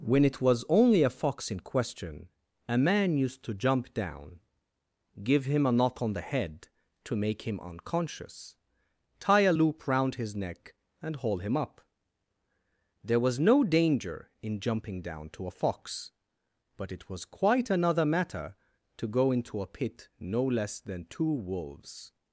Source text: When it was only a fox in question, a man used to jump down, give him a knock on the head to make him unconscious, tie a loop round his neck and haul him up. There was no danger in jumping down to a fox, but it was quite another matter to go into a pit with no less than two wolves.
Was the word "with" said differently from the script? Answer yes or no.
yes